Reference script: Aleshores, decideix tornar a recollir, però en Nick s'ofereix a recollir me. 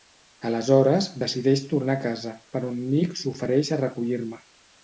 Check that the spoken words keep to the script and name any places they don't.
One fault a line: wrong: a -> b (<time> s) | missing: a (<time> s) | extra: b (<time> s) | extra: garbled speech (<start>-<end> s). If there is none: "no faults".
wrong: recollir -> casa (2.1 s)